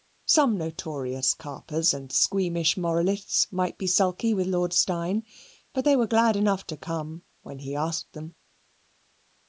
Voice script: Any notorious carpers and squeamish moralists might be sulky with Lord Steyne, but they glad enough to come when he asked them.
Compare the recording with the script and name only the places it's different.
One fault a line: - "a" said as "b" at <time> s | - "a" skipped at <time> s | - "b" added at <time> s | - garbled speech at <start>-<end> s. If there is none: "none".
- "Any" said as "Some" at 0.2 s
- "were" added at 5.9 s